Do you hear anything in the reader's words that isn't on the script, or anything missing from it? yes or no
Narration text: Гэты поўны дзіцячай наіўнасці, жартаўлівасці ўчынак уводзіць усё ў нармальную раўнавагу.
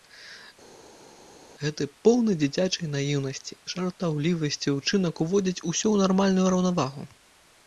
no